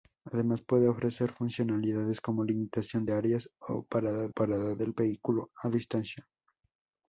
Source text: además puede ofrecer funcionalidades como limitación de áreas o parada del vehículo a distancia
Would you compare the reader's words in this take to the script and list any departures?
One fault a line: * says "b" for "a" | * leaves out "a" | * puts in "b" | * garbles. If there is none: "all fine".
* puts in "parada"